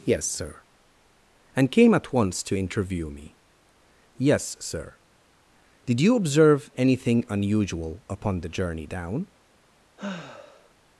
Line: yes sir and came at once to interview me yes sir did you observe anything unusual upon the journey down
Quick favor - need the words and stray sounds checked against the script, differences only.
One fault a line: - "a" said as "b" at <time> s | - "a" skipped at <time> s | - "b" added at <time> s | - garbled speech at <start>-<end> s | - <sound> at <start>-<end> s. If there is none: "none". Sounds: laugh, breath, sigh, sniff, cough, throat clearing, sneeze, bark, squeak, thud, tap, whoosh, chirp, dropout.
- sigh at 10.0-10.7 s